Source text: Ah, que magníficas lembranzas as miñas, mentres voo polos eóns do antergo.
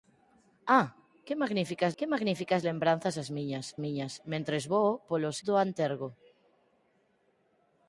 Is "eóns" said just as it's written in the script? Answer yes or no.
no